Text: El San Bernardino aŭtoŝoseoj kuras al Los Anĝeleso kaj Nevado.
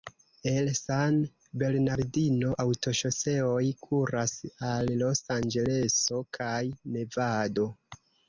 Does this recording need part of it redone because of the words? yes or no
no